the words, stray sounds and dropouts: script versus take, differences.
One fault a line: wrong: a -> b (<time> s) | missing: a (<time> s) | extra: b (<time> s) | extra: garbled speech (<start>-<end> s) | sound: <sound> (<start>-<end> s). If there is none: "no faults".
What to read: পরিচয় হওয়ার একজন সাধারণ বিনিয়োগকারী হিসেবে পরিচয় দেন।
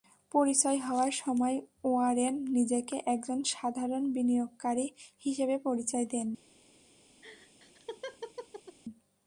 extra: সময় ওয়ারেন নিজেকে (1.2 s)
sound: laugh (7.2-8.8 s)